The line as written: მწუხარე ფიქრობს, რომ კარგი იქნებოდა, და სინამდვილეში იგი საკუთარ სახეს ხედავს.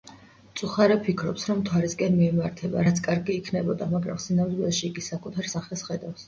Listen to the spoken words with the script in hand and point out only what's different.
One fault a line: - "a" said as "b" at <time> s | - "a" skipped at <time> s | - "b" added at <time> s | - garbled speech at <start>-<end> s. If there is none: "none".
- "მთვარისკენ მიემართება რაც" added at 1.6 s
- "და" said as "მაგრამ" at 4.0 s